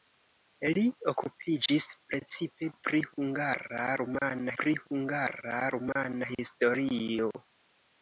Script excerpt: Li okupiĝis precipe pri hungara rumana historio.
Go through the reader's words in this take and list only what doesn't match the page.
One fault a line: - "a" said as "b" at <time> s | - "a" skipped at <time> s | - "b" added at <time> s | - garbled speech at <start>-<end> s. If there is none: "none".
- "pri hungara rumana" added at 4.6 s